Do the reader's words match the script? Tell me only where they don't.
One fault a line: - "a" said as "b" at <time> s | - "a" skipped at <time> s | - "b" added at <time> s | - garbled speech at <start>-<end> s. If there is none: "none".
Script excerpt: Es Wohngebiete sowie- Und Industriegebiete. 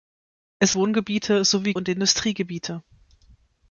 none